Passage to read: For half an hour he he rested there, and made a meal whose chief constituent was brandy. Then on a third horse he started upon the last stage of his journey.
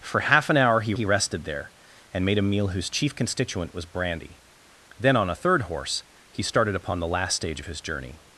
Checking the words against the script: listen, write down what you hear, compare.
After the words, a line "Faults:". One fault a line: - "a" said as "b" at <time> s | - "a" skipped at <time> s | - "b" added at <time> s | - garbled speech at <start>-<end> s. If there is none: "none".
For half an hour he he rested there, and made a meal whose chief constituent was brandy. Then on a third horse he started upon the last stage of his journey.
Faults:
none